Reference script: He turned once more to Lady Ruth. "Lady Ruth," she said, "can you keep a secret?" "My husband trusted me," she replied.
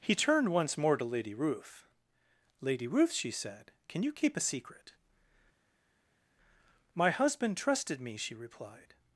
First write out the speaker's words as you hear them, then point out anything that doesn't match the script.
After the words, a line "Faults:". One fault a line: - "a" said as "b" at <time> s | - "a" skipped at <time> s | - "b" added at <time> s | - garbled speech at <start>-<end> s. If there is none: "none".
He turned once more to Lady Ruth. "Lady Ruth," she said, "can you keep a secret?" "My husband trusted me," she replied.
Faults:
none